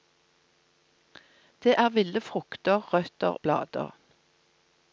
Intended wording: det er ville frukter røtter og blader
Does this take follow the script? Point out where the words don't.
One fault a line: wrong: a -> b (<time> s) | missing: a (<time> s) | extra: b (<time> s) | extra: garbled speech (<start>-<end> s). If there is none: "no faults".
missing: og (3.4 s)